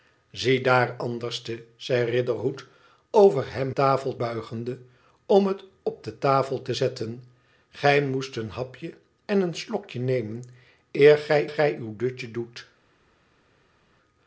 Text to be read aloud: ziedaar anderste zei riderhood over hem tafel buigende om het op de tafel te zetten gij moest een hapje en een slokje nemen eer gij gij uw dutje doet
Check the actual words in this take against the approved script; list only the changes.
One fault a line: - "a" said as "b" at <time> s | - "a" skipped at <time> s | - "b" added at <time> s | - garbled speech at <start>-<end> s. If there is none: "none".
none